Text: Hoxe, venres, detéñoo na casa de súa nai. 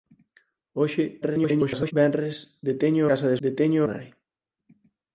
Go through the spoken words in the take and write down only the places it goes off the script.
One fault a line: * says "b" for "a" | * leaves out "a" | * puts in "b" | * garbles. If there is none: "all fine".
* garbles
* leaves out "na"
* says "detéñoo" for "súa"